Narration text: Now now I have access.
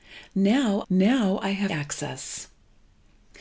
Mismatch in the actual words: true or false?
false